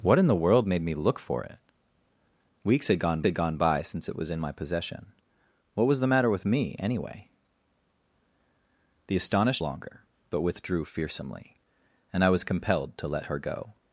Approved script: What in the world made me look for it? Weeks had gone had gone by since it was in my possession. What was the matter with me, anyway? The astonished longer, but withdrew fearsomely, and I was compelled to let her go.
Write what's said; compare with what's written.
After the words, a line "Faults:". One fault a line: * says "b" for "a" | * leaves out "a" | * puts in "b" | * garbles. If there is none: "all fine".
What in the world made me look for it? Weeks had gone had gone by since it was in my possession. What was the matter with me, anyway? The astonished longer, but withdrew fearsomely, and I was compelled to let her go.
Faults:
all fine